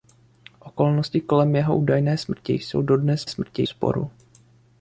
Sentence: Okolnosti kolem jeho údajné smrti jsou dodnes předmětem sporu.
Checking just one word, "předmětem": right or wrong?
wrong